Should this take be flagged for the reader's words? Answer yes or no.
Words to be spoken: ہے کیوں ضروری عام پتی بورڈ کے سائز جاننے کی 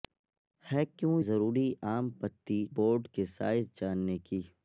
no